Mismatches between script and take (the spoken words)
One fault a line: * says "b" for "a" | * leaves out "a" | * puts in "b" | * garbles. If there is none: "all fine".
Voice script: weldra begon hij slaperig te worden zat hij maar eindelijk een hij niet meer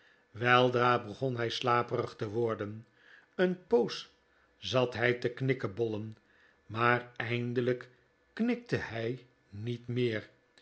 * puts in "een poos"
* puts in "te knikkebollen"
* says "knikte" for "een"